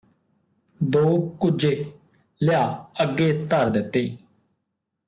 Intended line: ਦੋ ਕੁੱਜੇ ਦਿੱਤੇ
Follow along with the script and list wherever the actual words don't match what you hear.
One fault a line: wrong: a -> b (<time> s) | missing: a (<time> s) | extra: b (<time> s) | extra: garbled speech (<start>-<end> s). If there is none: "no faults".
extra: ਲਿਆ ਅੱਗੇ ਧਰ (2.4 s)